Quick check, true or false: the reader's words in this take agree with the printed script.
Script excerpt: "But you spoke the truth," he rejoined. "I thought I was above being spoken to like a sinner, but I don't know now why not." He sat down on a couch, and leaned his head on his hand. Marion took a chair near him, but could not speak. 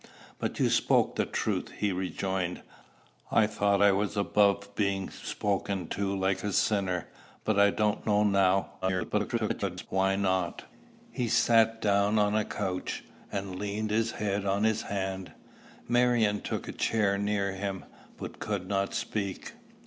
false